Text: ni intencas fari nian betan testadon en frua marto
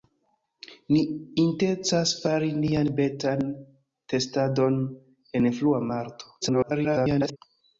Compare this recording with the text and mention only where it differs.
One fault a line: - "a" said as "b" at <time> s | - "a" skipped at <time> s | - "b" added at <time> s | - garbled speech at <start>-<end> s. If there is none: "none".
- garbled speech at 6.4-7.4 s